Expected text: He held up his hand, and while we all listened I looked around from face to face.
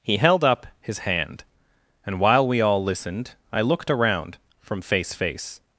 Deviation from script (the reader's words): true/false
true